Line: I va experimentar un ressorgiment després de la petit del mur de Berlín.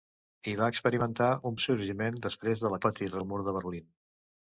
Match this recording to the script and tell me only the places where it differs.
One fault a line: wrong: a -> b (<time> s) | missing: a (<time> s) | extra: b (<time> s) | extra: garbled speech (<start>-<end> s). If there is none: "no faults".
no faults